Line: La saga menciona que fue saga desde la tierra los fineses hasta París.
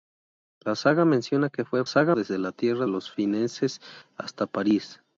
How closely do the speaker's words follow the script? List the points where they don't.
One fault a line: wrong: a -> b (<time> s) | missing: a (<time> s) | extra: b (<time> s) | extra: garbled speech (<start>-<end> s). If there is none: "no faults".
no faults